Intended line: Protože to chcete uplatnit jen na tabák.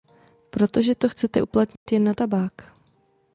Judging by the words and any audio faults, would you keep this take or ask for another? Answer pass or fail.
fail